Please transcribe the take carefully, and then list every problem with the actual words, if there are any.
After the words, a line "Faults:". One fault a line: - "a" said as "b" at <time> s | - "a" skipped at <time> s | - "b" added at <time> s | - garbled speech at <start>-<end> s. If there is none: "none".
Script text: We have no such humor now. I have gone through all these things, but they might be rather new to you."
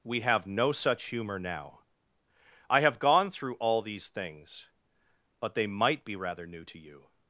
We have no such humor now. I have gone through all these things, but they might be rather new to you."
Faults:
none